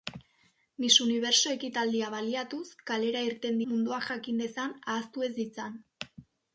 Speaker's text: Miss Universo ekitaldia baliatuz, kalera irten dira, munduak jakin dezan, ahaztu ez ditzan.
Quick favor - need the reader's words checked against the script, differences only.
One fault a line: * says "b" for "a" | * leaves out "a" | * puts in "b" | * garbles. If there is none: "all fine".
* leaves out "dira"